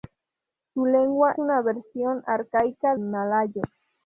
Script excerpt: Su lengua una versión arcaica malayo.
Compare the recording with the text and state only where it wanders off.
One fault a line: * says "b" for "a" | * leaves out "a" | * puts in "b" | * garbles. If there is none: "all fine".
all fine